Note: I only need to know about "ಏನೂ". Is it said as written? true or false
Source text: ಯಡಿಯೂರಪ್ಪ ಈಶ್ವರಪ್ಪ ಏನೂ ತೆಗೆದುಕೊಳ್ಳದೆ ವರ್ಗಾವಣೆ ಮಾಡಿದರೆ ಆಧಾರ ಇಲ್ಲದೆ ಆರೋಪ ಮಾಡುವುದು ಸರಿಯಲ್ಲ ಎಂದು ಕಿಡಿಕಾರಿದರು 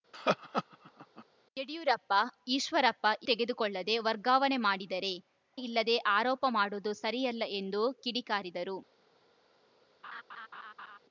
false